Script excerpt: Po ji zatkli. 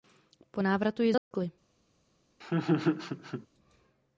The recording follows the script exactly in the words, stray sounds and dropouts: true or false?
false